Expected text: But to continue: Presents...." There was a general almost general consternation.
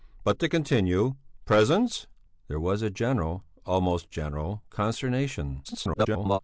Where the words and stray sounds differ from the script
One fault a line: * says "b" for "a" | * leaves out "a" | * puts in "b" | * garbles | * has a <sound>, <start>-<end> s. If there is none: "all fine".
* garbles